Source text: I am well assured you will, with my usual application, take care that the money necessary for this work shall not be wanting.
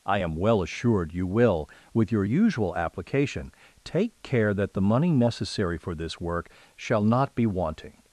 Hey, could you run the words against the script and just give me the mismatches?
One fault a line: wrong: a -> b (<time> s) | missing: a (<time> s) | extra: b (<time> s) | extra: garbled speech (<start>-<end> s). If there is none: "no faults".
wrong: my -> your (2.1 s)